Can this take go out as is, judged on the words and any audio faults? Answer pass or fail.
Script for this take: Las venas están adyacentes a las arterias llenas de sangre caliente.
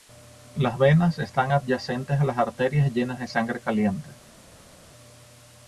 pass